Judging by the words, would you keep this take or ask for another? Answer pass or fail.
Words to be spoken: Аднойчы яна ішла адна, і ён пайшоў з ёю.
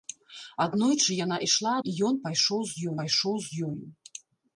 fail